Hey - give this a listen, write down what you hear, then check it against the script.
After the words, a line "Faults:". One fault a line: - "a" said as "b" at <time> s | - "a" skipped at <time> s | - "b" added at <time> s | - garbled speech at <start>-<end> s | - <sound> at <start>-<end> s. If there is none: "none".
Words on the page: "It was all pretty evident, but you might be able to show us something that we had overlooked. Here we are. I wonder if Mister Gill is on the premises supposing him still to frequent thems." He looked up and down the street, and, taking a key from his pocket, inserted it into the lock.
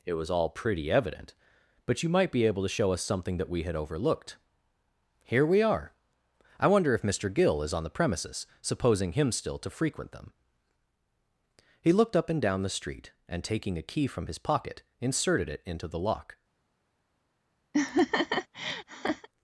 "It was all pretty evident, but you might be able to show us something that we had overlooked. Here we are. I wonder if Mister Gill is on the premises supposing him still to frequent them." He looked up and down the street, and, taking a key from his pocket, inserted it into the lock.
Faults:
- "thems" said as "them" at 10.1 s
- laugh at 17.7-19.3 s